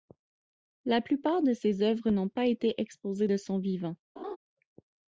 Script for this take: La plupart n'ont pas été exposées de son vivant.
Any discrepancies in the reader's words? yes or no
yes